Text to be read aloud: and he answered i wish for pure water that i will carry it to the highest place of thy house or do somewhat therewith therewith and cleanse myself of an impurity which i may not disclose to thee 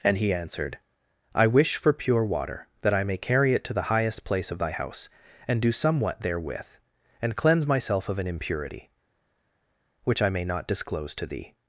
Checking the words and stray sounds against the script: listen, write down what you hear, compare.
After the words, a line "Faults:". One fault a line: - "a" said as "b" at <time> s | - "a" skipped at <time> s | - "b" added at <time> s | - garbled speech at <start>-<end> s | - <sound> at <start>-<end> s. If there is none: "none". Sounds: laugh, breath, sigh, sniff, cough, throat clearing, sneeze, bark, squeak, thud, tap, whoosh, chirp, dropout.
and he answered i wish for pure water that i may carry it to the highest place of thy house and do somewhat therewith and cleanse myself of an impurity which i may not disclose to thee
Faults:
- "will" said as "may" at 3.0 s
- "or" said as "and" at 5.5 s
- "therewith" skipped at 6.8 s